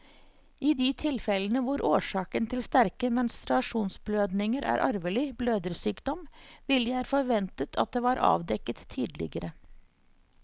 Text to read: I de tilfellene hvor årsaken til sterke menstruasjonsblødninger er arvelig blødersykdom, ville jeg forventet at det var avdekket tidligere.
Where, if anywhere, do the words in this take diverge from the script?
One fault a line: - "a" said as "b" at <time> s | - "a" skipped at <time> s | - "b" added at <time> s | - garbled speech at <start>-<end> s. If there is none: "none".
none